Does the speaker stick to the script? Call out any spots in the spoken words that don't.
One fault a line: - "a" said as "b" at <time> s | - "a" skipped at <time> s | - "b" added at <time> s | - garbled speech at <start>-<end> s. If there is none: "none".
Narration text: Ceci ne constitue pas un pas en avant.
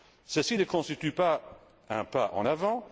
none